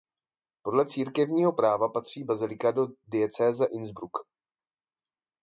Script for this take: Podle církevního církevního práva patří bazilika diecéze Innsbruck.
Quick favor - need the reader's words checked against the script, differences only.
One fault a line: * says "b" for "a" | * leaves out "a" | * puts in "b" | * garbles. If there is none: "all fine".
* leaves out "církevního"
* puts in "do"